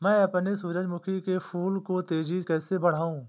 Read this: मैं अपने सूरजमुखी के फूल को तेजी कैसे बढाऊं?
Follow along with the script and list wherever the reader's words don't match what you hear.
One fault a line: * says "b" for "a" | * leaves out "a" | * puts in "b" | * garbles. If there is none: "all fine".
all fine